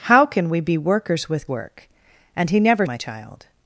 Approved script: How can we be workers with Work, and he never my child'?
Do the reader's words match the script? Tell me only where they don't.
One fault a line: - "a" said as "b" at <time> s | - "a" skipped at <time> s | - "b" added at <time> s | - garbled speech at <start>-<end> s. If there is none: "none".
none